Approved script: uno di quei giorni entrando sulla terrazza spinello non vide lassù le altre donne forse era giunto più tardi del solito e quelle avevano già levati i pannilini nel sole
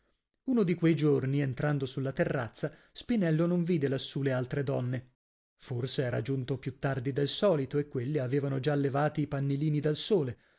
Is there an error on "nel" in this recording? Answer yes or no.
yes